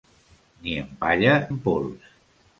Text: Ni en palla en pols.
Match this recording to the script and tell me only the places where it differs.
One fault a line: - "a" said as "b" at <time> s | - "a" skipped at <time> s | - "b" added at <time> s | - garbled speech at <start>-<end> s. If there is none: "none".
none